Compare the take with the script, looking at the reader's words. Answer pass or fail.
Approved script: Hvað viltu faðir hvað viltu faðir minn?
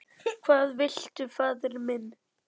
fail